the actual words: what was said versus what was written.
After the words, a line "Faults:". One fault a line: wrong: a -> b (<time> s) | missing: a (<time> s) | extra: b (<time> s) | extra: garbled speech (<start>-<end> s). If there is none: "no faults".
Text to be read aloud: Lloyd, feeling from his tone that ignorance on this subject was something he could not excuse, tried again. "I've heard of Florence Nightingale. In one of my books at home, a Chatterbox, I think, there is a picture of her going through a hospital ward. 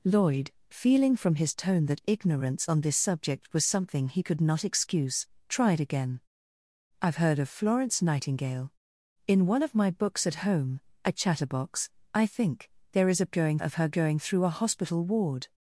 Lloyd, feeling from his tone that ignorance on this subject was something he could not excuse, tried again. "I've heard of Florence Nightingale. In one of my books at home, a Chatterbox, I think, there is a going of her going through a hospital ward.
Faults:
wrong: picture -> going (13.3 s)